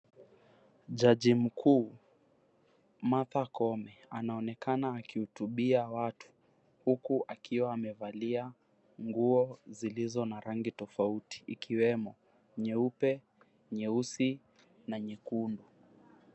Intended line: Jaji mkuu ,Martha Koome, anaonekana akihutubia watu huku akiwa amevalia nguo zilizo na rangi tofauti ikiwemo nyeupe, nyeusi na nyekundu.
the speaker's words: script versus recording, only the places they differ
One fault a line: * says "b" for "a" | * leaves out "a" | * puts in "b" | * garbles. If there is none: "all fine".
all fine